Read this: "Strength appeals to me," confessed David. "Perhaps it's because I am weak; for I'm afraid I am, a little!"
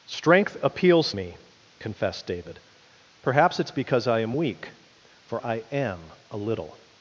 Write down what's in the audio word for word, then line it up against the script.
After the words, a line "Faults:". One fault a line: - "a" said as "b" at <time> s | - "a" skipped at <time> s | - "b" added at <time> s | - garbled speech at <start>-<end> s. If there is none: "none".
"Strength appeals me," confessed David. "Perhaps it's because I am weak; for I am, a little!"
Faults:
- "to" skipped at 1.1 s
- "I'm afraid" skipped at 5.4 s